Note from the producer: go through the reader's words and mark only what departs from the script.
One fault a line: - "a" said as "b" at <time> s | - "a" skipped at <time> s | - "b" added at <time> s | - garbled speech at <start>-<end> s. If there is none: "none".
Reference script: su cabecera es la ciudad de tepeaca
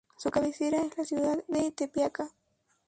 none